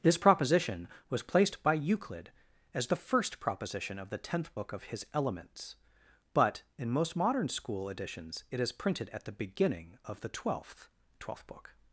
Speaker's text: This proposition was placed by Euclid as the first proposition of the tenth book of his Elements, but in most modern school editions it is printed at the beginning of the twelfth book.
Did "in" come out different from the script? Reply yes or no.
no